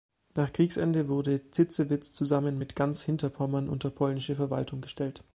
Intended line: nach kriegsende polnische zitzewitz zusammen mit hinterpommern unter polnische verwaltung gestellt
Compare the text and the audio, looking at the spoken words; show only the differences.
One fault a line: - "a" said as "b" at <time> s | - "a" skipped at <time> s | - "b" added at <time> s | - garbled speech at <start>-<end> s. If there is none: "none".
- "polnische" said as "wurde" at 1.1 s
- "ganz" added at 2.7 s